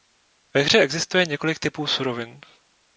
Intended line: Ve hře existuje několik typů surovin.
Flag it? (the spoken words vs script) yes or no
no